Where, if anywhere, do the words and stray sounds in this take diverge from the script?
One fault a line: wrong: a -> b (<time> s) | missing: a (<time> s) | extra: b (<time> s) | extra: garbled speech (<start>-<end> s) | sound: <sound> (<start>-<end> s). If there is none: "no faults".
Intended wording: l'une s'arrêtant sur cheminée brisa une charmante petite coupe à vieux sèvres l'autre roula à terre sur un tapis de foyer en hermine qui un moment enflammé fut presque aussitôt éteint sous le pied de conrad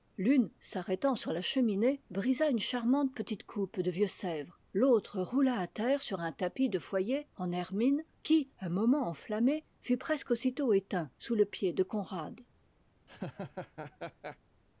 extra: la (1.3 s)
wrong: à -> de (3.8 s)
sound: laugh (13.1-14.4 s)